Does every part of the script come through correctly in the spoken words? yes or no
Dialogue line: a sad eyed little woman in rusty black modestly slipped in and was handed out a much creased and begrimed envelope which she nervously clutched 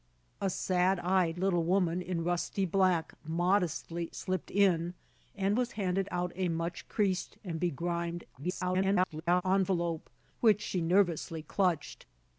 no